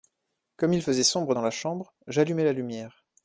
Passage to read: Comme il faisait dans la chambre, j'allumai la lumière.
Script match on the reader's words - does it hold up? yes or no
no